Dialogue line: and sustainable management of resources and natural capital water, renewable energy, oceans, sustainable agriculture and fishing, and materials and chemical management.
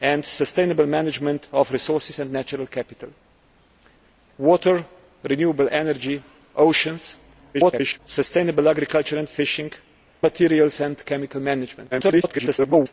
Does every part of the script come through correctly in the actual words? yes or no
no